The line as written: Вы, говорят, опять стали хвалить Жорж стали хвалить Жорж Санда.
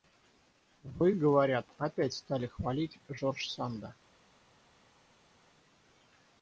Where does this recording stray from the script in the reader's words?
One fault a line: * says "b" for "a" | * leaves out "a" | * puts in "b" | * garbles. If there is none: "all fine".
* leaves out "стали хвалить Жорж"